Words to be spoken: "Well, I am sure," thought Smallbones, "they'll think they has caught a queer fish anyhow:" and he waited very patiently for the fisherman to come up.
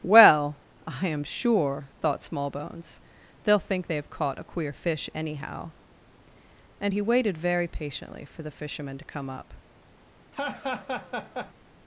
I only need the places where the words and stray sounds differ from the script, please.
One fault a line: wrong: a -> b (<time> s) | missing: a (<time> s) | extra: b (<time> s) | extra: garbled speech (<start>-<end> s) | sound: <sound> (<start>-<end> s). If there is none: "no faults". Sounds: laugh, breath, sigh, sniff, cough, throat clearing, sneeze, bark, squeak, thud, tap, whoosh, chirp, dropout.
wrong: has -> have (4.0 s)
sound: laugh (10.3-11.5 s)